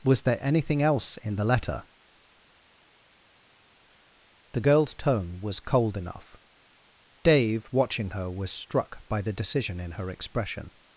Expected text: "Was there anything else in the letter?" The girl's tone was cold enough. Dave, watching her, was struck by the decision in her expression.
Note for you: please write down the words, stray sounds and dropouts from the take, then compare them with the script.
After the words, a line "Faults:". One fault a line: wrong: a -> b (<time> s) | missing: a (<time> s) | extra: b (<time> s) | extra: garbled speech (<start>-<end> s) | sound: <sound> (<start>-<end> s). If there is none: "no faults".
"Was there anything else in the letter?" The girl's tone was cold enough. Dave, watching her, was struck by the decision in her expression.
Faults:
no faults